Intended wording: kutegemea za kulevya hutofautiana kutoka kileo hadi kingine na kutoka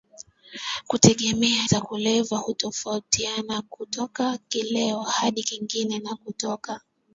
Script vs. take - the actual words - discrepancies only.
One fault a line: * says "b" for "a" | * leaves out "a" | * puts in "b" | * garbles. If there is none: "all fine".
all fine